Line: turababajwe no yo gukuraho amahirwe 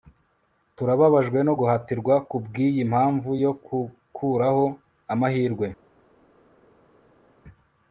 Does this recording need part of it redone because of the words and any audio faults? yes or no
yes